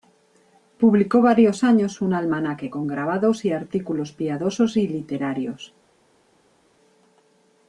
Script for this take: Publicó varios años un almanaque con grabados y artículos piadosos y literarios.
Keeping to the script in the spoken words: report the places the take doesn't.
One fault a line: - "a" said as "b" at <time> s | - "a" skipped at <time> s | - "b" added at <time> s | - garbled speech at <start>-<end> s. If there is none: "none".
none